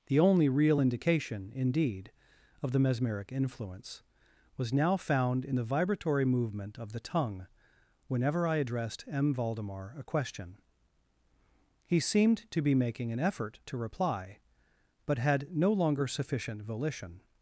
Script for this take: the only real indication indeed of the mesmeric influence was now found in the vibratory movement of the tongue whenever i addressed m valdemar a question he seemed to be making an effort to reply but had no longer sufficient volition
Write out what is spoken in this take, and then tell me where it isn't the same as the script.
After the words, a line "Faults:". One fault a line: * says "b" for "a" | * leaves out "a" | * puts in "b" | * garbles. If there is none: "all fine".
the only real indication indeed of the mesmeric influence was now found in the vibratory movement of the tongue whenever i addressed m valdemar a question he seemed to be making an effort to reply but had no longer sufficient volition
Faults:
all fine